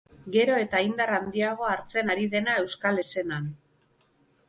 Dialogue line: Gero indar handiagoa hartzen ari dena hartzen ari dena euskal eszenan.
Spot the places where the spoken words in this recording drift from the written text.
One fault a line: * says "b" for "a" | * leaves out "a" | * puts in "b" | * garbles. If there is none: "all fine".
* puts in "eta"
* leaves out "hartzen ari dena"